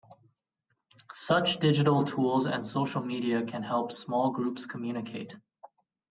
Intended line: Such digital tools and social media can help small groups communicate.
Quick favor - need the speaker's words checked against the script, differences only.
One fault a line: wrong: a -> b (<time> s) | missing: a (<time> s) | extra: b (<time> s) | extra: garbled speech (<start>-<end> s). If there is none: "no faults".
no faults